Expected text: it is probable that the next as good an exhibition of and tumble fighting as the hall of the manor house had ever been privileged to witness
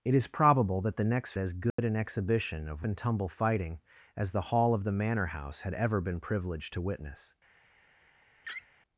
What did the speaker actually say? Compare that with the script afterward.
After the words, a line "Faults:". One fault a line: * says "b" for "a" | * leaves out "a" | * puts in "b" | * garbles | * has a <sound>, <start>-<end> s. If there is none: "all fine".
it is probable that the next as good an exhibition of and tumble fighting as the hall of the manor house had ever been privileged to witness
Faults:
* has a dropout, 1.7-1.8 s
* has a laugh, 8.4-8.7 s